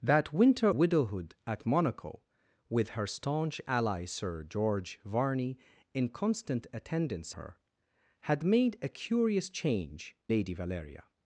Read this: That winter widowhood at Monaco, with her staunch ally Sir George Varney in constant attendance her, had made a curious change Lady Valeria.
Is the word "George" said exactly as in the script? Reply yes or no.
yes